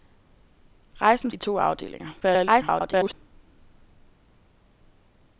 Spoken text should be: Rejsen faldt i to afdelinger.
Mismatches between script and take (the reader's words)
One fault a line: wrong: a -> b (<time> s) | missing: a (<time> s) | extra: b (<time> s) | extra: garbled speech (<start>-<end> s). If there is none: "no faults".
missing: faldt (1.3 s)
extra: garbled speech (2.2-3.1 s)